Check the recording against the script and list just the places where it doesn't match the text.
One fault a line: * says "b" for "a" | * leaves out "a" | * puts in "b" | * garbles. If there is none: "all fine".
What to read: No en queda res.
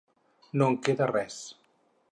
all fine